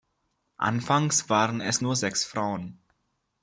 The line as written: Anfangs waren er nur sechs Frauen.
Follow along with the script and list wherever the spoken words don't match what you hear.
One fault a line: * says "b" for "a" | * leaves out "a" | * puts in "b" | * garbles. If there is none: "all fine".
* says "es" for "er"